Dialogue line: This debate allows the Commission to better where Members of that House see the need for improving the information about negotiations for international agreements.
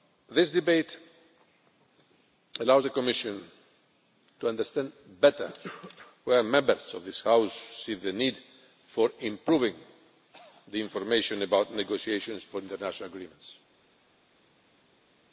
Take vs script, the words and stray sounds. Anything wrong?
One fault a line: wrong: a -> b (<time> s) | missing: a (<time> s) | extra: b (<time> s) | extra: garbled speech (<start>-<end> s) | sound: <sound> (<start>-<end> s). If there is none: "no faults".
extra: understand (4.5 s)
wrong: that -> this (7.0 s)